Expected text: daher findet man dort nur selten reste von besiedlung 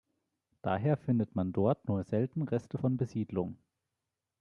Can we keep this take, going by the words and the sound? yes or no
yes